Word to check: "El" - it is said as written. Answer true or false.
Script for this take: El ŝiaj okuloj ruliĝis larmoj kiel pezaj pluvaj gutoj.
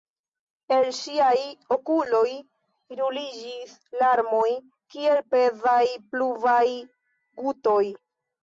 true